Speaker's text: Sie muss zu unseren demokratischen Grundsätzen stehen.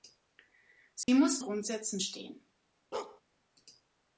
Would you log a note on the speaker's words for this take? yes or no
yes